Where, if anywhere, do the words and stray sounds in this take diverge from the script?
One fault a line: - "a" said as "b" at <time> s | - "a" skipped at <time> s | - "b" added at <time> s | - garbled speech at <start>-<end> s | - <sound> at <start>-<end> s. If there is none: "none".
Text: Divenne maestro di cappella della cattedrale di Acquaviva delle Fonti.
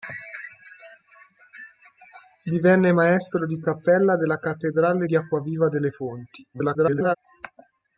- garbled speech at 6.5-7.2 s